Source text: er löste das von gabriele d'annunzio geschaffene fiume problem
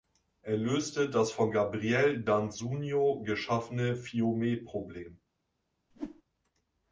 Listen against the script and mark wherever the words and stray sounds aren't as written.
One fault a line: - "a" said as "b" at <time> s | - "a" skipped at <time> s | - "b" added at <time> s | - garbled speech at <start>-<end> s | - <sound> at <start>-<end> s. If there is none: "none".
- whoosh at 5.9-6.2 s